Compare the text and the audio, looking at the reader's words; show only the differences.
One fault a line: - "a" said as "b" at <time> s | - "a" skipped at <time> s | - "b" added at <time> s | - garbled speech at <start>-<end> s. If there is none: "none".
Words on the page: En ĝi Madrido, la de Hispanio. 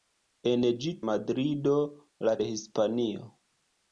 none